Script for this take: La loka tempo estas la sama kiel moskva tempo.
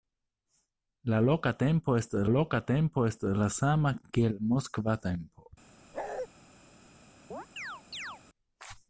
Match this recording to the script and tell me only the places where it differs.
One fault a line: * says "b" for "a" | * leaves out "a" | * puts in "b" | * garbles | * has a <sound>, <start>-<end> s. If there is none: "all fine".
* puts in "loka tempo estas"
* has a bark, 5.9-6.3 s
* has a chirp, 7.3-8.2 s